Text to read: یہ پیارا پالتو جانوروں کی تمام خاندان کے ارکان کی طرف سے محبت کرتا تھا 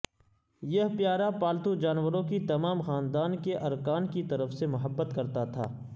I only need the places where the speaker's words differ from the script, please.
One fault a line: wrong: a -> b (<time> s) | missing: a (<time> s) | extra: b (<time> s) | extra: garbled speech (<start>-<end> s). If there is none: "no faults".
no faults